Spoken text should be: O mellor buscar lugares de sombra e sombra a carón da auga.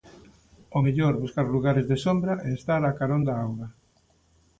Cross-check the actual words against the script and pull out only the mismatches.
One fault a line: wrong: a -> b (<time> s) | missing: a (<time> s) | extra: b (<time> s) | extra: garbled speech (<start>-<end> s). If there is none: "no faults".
wrong: sombra -> estar (2.6 s)